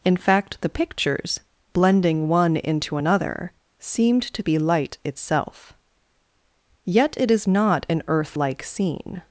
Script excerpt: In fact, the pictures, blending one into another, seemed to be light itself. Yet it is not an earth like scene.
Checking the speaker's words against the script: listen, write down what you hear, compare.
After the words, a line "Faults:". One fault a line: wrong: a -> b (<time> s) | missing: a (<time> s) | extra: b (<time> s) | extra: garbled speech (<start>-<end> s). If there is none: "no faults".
In fact, the pictures, blending one into another, seemed to be light itself. Yet it is not an earth like scene.
Faults:
no faults